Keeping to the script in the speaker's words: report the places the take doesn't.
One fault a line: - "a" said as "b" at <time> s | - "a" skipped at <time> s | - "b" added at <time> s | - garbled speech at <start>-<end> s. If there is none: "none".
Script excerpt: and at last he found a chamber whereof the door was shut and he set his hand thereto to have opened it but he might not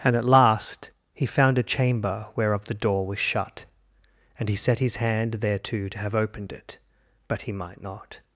none